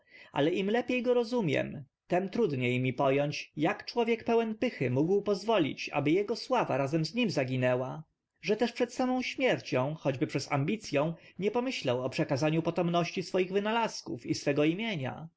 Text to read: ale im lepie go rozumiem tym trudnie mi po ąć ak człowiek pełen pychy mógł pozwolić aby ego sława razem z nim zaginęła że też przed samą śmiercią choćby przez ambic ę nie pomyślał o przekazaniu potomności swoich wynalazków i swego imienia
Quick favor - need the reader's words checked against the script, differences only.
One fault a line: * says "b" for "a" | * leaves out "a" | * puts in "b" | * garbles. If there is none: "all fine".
all fine